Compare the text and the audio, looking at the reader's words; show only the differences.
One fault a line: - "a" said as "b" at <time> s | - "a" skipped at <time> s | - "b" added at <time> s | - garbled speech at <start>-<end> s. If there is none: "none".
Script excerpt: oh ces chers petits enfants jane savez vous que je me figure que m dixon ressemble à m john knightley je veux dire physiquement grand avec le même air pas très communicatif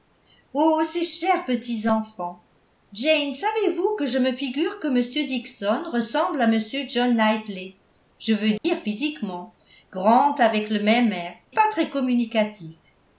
none